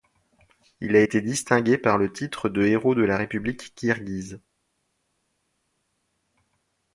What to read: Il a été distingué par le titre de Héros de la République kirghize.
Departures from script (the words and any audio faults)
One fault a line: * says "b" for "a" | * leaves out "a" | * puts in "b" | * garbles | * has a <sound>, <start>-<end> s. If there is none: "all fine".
all fine